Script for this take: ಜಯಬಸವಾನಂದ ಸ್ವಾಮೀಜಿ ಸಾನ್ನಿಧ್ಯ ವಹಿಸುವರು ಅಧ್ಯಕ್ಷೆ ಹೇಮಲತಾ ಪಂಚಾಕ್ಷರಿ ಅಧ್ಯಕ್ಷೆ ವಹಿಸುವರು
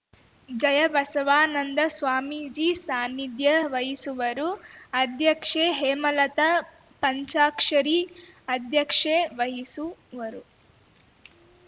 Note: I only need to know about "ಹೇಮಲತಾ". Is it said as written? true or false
true